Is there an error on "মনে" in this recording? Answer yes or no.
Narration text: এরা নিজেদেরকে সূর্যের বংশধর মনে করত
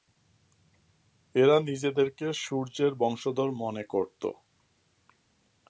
no